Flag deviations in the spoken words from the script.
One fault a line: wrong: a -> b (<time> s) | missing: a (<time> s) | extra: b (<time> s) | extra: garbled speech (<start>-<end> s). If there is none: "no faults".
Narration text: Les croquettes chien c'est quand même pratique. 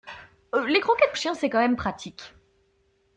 no faults